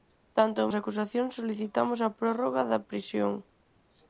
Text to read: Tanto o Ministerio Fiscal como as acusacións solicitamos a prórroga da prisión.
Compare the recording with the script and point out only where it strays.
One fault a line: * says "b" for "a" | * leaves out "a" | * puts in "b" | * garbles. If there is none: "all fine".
* leaves out "Ministerio Fiscal como"